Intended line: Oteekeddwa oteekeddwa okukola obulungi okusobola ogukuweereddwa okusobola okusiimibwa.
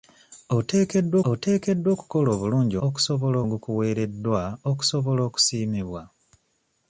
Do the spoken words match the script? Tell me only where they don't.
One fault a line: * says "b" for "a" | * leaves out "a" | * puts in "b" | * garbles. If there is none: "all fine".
all fine